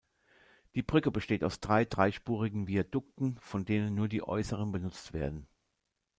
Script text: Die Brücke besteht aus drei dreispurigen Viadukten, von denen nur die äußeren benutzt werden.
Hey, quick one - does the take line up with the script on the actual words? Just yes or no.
yes